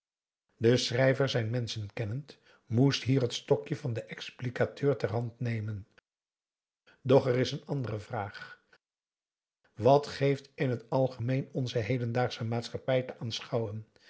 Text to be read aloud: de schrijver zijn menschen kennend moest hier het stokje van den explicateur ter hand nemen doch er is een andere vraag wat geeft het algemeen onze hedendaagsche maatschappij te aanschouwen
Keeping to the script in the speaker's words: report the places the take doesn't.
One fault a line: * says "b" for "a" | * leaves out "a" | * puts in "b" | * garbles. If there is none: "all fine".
* puts in "in"